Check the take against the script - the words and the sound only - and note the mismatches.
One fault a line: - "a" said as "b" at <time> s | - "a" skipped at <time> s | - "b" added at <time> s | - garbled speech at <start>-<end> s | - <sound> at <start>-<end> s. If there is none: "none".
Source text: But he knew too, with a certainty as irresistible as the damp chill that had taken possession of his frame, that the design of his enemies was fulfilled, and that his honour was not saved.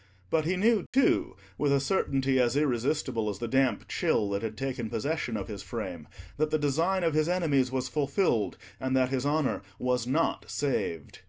- dropout at 0.9-0.9 s